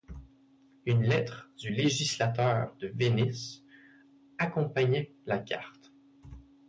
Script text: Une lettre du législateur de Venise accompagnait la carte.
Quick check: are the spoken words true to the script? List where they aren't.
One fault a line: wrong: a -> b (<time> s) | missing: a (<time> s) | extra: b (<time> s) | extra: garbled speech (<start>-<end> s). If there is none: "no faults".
no faults